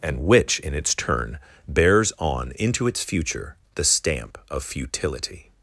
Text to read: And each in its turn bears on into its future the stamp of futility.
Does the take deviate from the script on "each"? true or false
true